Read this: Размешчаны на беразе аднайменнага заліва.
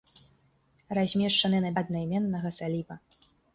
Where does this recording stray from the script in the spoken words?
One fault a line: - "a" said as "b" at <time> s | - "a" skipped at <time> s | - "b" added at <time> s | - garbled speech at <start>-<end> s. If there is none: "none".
- "беразе" skipped at 1.7 s